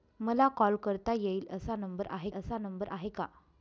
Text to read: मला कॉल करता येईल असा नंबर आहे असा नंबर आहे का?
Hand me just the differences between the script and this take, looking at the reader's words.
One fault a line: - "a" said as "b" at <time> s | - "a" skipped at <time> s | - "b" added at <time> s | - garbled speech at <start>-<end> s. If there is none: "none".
none